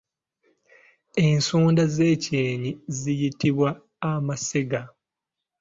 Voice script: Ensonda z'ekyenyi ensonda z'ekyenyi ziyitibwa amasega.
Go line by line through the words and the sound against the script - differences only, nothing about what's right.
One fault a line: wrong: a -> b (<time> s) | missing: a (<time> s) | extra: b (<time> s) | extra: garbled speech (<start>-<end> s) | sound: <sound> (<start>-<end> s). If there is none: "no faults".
missing: ensonda z'ekyenyi (2.7 s)